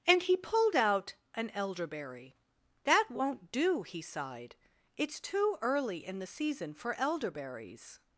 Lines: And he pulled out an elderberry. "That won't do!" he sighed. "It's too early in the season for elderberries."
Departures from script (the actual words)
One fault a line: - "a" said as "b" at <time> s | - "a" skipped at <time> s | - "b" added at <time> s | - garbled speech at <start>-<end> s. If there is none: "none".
none